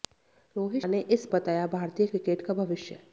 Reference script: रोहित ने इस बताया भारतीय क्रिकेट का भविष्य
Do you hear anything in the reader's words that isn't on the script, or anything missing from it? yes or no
no